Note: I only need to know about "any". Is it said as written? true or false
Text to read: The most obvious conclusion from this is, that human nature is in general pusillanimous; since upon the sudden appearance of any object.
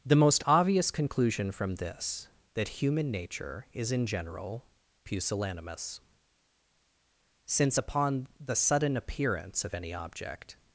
true